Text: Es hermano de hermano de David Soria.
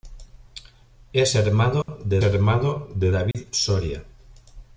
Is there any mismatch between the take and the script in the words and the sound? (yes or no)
yes